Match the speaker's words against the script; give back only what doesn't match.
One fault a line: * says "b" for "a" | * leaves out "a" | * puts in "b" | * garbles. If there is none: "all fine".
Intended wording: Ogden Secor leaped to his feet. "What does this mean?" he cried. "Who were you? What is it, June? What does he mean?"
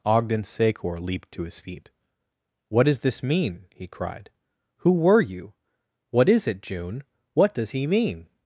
all fine